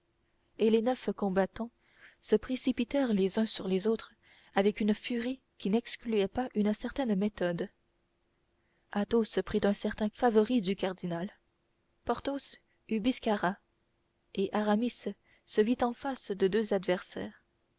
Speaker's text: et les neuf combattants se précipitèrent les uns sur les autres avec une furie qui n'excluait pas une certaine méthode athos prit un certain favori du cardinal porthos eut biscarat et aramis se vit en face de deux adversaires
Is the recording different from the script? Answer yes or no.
no